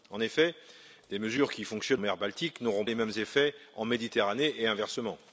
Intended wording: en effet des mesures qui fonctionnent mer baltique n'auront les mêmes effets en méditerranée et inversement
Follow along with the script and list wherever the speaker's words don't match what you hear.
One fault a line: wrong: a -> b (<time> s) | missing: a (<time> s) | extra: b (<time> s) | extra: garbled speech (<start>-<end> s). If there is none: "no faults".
no faults